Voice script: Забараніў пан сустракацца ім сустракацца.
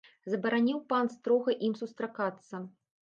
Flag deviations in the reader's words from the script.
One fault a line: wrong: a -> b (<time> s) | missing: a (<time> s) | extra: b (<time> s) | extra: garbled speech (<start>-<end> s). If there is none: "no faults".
wrong: сустракацца -> строга (1.1 s)